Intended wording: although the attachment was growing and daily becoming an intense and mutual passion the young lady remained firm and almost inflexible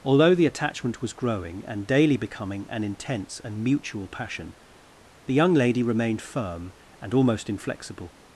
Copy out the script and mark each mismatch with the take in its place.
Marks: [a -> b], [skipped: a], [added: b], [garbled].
although the attachment was growing and daily becoming an intense and mutual passion the young lady remained firm and almost inflexible